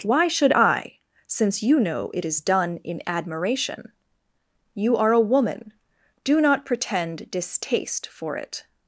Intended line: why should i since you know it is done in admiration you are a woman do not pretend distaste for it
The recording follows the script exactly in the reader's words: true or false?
true